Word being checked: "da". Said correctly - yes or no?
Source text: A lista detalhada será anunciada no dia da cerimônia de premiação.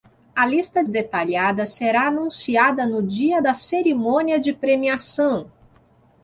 yes